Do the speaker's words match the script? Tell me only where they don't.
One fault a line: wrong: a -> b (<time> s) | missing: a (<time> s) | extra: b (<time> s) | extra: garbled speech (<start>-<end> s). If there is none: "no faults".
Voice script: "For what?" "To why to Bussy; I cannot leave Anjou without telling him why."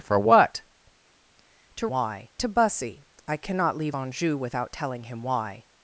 no faults